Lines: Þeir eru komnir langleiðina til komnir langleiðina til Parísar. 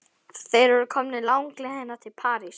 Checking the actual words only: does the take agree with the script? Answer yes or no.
no